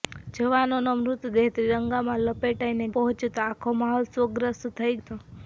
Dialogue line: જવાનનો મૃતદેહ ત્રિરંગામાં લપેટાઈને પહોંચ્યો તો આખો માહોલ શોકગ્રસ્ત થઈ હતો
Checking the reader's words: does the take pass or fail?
pass